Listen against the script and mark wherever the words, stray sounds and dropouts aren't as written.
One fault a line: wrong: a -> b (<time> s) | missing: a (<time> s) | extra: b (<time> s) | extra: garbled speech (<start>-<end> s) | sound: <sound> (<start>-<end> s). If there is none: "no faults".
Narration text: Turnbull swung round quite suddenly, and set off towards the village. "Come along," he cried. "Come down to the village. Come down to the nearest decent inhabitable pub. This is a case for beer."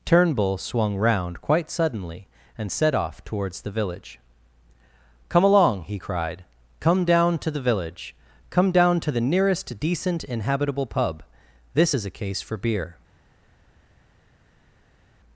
no faults